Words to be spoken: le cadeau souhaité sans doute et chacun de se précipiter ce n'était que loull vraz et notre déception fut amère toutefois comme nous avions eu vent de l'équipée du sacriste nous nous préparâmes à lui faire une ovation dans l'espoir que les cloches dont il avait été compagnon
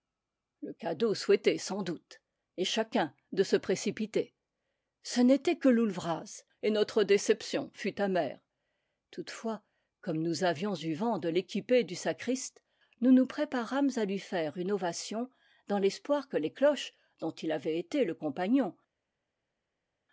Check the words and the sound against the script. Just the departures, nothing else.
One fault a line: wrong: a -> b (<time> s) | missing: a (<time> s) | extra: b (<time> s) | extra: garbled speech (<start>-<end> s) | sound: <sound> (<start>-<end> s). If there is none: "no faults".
extra: le (18.0 s)